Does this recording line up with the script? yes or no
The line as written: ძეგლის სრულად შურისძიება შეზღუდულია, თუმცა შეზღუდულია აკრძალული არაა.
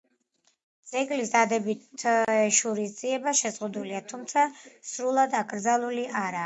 no